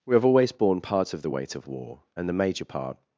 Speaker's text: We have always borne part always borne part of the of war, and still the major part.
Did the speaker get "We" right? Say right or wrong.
right